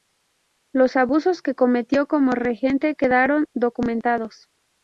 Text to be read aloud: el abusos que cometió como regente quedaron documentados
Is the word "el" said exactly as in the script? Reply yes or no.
no